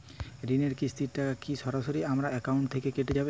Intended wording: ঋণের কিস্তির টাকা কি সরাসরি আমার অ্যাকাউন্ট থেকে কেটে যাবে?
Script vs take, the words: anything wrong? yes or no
no